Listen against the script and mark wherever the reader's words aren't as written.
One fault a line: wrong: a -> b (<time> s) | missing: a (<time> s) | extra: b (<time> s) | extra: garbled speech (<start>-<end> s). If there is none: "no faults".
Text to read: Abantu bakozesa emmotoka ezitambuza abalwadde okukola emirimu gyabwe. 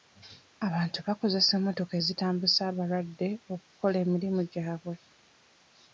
no faults